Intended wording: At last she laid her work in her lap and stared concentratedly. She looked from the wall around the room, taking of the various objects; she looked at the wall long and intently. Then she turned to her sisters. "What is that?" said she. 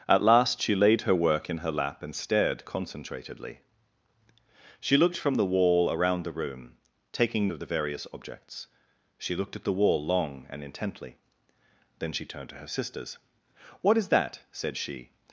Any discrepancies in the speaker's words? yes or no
no